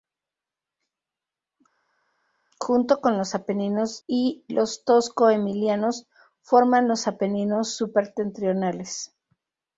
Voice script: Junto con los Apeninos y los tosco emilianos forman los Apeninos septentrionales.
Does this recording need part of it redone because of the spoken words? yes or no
no